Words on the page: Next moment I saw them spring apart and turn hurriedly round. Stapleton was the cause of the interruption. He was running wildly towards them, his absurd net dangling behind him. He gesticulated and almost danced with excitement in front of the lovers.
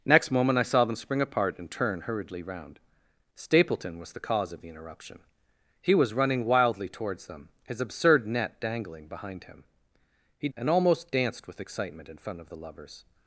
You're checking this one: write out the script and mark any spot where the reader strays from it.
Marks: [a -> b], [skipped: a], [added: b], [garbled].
Next moment I saw them spring apart and turn hurriedly round. Stapleton was the cause of the interruption. He was running wildly towards them, his absurd net dangling behind him. He [skipped: gesticulated] and almost danced with excitement in front of the lovers.